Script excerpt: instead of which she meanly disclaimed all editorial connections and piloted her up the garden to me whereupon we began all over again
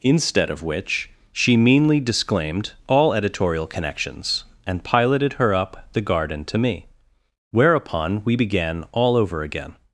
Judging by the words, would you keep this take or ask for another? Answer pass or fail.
pass